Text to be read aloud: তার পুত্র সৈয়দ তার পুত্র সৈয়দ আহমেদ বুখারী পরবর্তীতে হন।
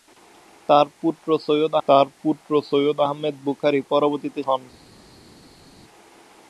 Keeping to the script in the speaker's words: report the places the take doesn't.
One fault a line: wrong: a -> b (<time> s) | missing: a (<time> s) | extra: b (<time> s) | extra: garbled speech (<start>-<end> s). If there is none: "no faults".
no faults